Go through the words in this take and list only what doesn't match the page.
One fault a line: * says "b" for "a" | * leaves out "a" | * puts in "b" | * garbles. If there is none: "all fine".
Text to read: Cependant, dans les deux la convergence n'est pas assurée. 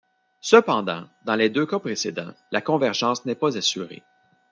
* puts in "cas précédents"